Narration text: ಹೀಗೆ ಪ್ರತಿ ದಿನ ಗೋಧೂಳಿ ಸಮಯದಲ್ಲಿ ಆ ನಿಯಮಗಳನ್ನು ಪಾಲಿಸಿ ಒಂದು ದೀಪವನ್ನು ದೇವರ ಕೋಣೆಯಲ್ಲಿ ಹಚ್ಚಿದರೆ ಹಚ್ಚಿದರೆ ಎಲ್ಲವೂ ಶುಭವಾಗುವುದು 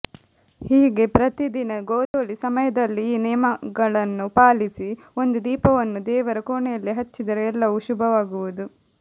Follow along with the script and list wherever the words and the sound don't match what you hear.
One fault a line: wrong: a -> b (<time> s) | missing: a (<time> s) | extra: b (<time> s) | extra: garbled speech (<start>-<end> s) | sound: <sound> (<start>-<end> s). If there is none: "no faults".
sound: dropout (2.1-2.1 s)
wrong: ಆ -> ಈ (3.1 s)
missing: ಹಚ್ಚಿದರೆ (7.4 s)